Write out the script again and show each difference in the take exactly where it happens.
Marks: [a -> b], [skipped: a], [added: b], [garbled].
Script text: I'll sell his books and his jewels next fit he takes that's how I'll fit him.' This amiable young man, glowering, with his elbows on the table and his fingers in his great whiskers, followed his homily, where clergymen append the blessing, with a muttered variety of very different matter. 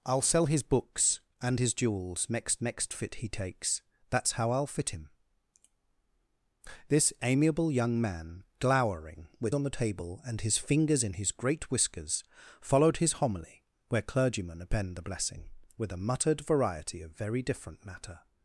I'll sell his books and his jewels next [added: next] fit he takes that's how I'll fit him.' This amiable young man, glowering, with [skipped: his elbows] on the table and his fingers in his great whiskers, followed his homily, where clergymen append the blessing, with a muttered variety of very different matter.